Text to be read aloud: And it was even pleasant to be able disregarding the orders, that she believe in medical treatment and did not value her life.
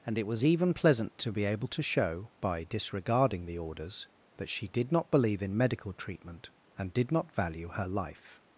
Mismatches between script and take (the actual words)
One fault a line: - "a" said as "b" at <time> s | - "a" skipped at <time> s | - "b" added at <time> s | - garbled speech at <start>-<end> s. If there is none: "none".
- "to show by" added at 1.7 s
- "did not" added at 4.7 s